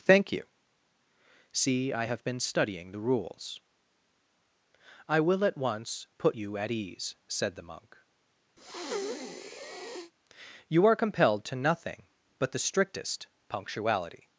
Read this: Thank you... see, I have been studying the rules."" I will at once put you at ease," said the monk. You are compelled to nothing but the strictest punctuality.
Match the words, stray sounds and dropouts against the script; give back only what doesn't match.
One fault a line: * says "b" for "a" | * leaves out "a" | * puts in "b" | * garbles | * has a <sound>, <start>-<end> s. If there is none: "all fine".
* has a breath, 8.6-10.1 s